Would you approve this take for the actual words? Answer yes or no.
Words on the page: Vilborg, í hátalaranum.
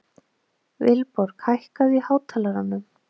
no